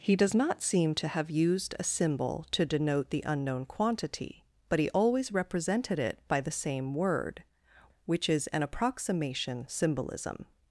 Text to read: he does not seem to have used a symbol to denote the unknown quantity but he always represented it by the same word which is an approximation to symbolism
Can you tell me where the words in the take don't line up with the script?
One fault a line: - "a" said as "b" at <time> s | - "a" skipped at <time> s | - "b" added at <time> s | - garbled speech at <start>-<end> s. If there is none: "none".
- "to" skipped at 9.7 s